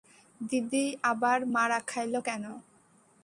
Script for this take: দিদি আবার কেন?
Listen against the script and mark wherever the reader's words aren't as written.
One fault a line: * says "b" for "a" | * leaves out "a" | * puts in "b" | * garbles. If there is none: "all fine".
* puts in "মারা খাইল"